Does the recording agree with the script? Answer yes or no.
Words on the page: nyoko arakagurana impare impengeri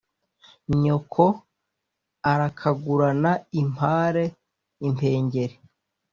yes